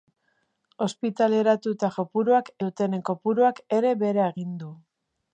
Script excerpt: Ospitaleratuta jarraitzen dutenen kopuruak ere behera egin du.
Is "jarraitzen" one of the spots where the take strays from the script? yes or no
yes